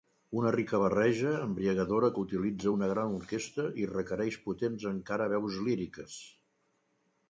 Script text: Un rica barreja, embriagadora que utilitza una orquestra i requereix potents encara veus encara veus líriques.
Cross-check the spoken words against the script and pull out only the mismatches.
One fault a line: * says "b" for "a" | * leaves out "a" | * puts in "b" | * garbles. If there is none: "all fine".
* says "Una" for "Un"
* puts in "gran"
* leaves out "encara veus"